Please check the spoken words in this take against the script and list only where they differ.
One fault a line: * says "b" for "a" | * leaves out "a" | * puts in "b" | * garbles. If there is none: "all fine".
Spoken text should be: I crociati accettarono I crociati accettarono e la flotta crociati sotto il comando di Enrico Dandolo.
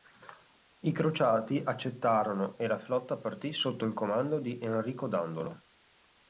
* leaves out "I crociati accettarono"
* says "partì" for "crociati"